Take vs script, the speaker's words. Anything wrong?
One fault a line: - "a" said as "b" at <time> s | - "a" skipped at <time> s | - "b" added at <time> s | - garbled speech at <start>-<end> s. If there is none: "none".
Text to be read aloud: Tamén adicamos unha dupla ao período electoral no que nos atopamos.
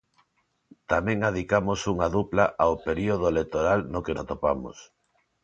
- "nos" skipped at 4.2 s